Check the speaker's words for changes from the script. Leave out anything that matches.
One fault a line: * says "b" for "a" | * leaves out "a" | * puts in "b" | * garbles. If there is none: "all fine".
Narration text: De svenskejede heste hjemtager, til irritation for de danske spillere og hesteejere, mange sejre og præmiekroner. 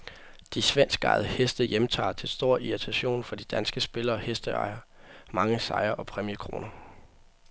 * puts in "stor"